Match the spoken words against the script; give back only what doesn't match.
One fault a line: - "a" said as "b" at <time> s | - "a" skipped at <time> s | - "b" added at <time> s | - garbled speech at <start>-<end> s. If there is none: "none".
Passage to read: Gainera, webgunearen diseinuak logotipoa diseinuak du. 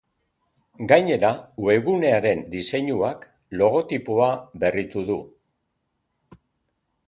- "diseinuak" said as "berritu" at 4.7 s